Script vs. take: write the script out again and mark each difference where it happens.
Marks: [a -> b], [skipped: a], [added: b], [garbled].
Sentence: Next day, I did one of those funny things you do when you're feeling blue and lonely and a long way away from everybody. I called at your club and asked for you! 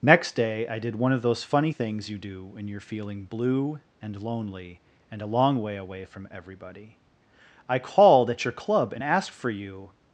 Next day, I did one of those funny things you do when you're feeling blue and lonely and a long way away from everybody. I called at your club and asked for you!